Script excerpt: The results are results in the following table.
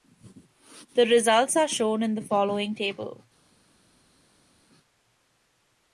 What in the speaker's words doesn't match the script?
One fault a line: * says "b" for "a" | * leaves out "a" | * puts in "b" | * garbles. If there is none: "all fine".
* says "shown" for "results"